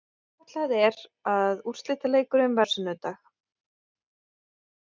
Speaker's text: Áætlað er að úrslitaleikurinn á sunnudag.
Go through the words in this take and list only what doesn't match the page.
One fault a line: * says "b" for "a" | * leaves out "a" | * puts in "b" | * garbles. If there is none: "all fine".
all fine